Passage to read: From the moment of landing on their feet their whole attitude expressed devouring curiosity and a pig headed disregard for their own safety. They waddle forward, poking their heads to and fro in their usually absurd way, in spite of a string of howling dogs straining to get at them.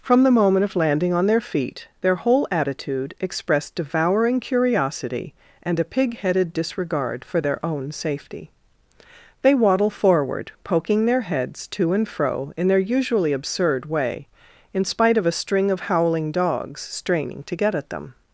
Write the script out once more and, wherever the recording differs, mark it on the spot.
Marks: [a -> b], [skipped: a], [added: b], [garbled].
From the moment of landing on their feet their whole attitude expressed devouring curiosity and a pig headed disregard for their own safety. They waddle forward, poking their heads to and fro in their usually absurd way, in spite of a string of howling dogs straining to get at them.